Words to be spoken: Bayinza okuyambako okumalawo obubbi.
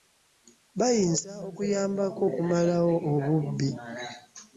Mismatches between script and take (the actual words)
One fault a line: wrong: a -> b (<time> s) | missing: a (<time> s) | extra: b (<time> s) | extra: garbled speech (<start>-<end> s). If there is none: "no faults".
no faults